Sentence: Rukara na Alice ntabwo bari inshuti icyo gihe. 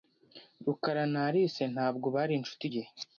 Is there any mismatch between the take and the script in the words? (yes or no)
yes